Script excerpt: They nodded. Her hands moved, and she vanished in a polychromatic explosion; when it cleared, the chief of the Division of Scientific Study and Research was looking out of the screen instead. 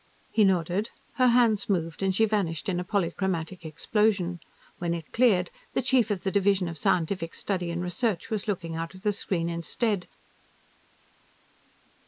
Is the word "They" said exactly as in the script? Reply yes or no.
no